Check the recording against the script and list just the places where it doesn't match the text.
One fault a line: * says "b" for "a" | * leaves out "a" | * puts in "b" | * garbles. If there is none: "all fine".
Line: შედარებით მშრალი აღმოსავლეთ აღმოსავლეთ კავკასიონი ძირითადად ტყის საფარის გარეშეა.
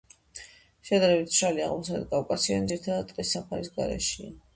* leaves out "აღმოსავლეთ"